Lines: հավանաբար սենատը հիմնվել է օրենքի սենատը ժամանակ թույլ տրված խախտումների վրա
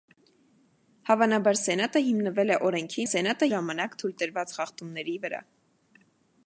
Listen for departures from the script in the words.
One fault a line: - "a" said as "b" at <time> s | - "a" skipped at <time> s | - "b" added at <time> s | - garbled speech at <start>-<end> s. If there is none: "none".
none